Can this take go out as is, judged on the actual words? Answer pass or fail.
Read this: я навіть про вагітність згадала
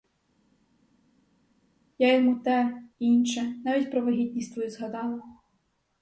fail